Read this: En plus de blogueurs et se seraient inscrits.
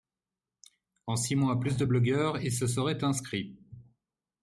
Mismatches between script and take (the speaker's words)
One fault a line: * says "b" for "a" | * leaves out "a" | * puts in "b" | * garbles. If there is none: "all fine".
* puts in "six mois"